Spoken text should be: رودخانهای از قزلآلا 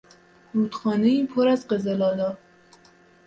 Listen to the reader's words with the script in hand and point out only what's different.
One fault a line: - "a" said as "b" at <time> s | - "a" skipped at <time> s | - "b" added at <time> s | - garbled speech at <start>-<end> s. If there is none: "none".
- "پر" added at 1.2 s